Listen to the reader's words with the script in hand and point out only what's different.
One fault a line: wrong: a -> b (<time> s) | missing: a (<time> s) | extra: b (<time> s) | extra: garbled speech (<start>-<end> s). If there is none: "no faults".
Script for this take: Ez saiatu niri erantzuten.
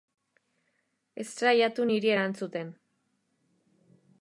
no faults